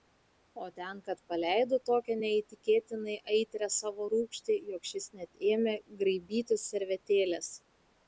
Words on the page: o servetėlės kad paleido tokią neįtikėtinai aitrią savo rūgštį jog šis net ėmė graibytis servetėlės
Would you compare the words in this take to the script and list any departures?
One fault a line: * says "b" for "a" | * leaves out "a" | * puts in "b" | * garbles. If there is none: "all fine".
* says "ten" for "servetėlės"